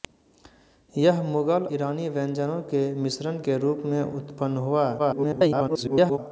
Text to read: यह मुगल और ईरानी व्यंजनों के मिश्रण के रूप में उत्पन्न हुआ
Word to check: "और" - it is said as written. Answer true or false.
false